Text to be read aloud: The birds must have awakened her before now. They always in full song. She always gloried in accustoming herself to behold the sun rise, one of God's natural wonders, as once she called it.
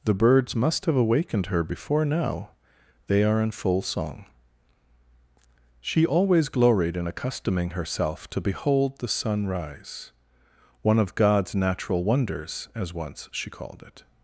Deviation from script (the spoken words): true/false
true